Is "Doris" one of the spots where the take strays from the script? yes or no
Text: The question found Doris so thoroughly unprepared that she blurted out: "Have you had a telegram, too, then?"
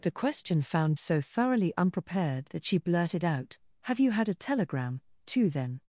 yes